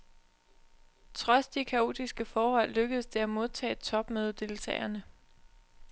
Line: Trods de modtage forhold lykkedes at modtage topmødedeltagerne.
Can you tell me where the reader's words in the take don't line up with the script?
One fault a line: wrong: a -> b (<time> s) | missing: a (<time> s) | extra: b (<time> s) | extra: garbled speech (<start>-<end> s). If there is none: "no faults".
wrong: modtage -> kaotiske (1.6 s)
extra: det (3.1 s)